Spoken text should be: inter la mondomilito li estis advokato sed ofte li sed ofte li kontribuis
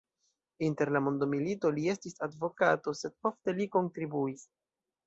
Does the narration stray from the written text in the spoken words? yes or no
yes